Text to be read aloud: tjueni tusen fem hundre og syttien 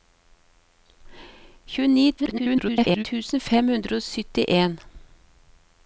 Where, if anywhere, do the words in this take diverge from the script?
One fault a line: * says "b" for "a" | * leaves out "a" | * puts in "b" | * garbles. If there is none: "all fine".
* garbles